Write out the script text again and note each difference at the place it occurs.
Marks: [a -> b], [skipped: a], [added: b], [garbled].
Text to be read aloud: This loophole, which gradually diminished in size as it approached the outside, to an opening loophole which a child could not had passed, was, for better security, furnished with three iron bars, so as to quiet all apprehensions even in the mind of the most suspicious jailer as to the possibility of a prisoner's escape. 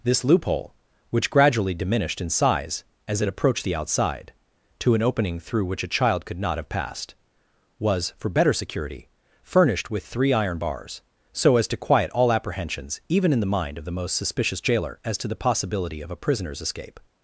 This loophole, which gradually diminished in size as it approached the outside, to an opening [loophole -> through] which a child could not [had -> have] passed, was, for better security, furnished with three iron bars, so as to quiet all apprehensions even in the mind of the most suspicious jailer as to the possibility of a prisoner's escape.